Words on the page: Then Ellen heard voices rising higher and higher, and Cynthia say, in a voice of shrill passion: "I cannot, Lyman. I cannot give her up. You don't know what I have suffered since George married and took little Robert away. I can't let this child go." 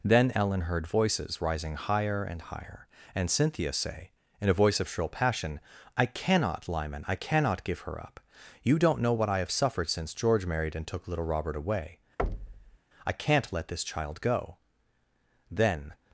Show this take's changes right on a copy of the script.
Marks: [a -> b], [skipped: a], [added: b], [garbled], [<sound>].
Then Ellen heard voices rising higher and higher, and Cynthia say, in a voice of shrill passion: "I cannot, Lyman. I cannot give her up. You don't know what I have suffered since George married and took little Robert away. [thud] I can't let this child go." [added: Then]